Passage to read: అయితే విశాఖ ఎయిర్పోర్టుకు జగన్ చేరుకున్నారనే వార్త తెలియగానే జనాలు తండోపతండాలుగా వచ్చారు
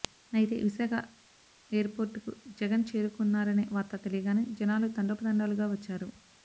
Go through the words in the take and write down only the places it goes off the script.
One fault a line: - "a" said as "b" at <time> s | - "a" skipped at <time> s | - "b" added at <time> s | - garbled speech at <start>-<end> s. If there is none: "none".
none